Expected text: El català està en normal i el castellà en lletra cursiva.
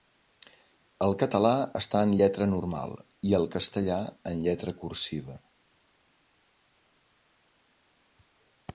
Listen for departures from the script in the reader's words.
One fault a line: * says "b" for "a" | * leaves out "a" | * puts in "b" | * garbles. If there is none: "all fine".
* puts in "lletra"